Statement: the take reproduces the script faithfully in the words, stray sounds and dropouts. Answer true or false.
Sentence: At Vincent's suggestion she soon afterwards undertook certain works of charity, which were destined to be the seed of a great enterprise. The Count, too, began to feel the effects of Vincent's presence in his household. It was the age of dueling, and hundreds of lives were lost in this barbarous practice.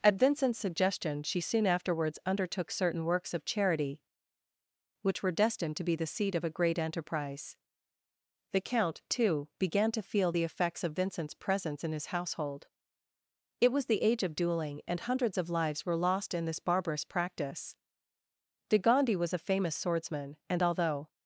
false